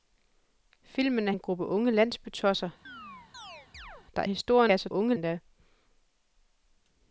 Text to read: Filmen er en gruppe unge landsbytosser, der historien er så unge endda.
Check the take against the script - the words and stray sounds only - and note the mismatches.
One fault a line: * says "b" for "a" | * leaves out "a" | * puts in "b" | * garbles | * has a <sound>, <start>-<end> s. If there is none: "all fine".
* has a chirp, 2.9-4.1 s